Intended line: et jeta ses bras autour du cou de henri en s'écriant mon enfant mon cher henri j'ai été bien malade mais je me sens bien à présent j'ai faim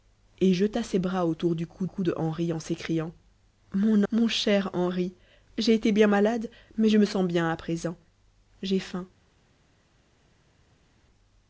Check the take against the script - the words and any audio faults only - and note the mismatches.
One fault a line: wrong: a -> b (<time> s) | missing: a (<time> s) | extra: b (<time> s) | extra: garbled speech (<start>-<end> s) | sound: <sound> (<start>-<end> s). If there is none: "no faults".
extra: cou (1.9 s)
missing: enfant (4.0 s)